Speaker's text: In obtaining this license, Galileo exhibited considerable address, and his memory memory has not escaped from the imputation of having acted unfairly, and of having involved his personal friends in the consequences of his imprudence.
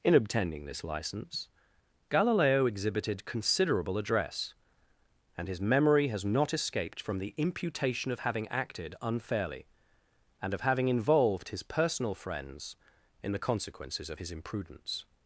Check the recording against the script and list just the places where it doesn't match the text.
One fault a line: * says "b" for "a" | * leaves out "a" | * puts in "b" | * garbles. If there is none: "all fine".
* leaves out "memory"